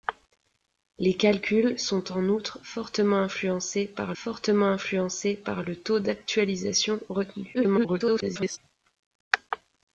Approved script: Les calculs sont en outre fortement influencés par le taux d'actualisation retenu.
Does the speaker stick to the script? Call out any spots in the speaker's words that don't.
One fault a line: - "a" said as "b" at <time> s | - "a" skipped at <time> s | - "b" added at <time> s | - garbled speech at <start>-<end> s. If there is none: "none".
- "fortement influencés par" added at 4.2 s
- garbled speech at 7.5-8.6 s